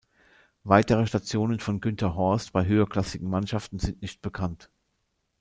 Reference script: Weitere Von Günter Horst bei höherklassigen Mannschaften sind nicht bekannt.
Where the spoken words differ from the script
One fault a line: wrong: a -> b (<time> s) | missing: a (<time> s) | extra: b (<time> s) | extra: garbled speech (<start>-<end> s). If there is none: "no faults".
extra: Stationen (1.0 s)